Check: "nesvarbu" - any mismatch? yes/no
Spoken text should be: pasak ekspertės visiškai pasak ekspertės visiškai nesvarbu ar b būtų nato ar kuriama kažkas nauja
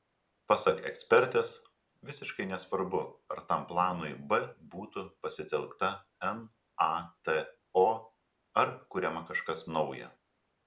yes